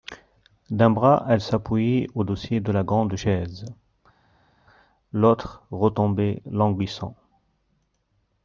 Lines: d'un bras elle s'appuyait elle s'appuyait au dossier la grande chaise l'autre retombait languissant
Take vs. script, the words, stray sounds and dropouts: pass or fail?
fail